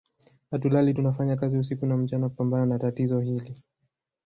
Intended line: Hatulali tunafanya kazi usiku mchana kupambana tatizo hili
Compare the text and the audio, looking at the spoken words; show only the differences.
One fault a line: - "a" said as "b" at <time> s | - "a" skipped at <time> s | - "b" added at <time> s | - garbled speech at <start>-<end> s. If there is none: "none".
- "na" added at 1.9 s
- "na" added at 2.7 s